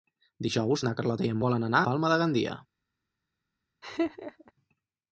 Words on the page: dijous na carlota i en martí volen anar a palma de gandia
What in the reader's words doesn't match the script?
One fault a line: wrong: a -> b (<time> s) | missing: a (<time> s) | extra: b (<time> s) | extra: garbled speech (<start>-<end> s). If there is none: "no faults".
missing: martí (1.4 s)
missing: a (1.8 s)